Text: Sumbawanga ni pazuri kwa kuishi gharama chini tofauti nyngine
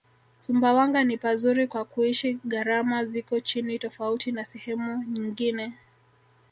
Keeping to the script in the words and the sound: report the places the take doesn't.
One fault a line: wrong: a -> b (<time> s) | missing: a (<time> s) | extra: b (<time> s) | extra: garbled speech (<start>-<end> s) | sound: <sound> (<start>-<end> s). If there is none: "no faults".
extra: ziko (3.1 s)
extra: na sehemu (4.3 s)